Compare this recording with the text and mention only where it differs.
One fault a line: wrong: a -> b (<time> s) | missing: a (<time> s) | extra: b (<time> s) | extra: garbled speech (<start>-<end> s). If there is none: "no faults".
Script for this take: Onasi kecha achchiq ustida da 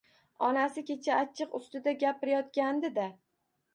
extra: gapirayotgandi (2.0 s)